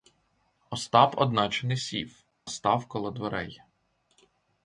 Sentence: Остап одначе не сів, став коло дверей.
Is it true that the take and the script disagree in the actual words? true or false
false